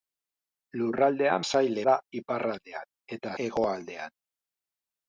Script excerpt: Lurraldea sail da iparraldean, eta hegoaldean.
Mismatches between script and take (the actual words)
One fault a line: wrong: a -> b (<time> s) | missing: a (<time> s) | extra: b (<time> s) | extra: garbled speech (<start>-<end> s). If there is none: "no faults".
no faults